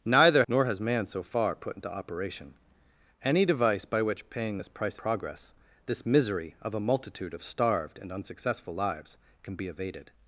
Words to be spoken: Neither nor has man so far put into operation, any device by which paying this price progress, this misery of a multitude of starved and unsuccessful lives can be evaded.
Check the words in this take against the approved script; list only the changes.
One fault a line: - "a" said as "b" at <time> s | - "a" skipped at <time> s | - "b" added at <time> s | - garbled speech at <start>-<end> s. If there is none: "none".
none